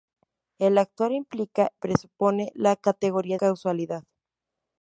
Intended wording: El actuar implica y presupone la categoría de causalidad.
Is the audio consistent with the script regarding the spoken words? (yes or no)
no